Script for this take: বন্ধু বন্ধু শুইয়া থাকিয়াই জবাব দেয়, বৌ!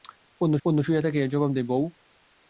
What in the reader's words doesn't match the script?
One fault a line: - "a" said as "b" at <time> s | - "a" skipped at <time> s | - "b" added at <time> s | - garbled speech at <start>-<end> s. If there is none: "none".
none